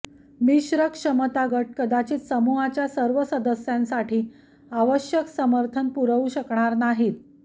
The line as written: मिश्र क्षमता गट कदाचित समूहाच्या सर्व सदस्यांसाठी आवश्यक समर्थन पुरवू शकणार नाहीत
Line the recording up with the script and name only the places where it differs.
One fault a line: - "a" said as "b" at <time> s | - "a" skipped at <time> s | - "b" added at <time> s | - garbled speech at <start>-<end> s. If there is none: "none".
none